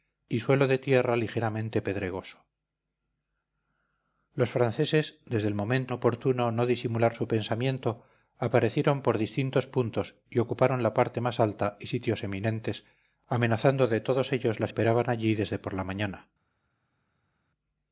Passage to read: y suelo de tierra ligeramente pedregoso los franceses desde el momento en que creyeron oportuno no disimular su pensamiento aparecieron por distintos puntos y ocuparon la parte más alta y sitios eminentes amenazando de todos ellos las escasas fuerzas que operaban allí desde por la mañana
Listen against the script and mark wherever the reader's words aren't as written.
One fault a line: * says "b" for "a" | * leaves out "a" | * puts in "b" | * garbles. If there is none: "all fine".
* leaves out "en que creyeron"
* leaves out "escasas fuerzas que"